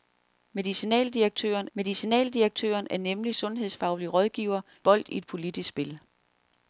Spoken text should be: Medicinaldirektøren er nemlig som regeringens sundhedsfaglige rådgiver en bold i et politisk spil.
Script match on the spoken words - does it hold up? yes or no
no